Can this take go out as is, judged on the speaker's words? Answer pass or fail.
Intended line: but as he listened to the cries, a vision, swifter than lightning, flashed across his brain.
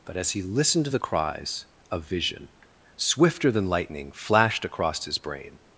pass